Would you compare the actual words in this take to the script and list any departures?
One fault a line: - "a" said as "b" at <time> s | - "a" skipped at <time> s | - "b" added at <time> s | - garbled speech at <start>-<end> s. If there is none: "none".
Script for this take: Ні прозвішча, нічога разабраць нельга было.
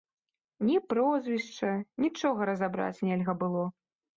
none